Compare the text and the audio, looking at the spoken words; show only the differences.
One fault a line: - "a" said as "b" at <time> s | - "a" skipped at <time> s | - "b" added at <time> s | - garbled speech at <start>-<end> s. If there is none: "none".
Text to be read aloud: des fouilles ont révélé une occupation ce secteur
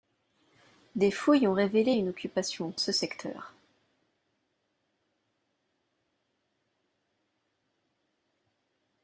none